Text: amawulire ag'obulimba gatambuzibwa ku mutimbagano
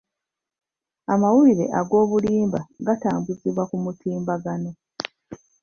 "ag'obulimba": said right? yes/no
yes